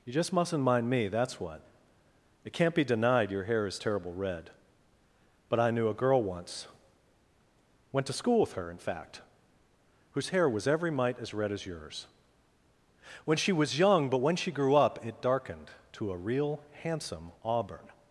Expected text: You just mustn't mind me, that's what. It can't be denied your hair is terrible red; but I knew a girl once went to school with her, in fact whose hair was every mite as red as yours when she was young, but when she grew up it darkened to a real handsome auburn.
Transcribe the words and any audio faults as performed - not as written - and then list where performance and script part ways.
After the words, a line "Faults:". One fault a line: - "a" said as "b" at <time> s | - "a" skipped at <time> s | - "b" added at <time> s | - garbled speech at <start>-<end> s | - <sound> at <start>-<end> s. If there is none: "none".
You just mustn't mind me, that's what. It can't be denied your hair is terrible red; but I knew a girl once went to school with her, in fact whose hair was every mite as red as yours when she was young, but when she grew up it darkened to a real handsome auburn.
Faults:
none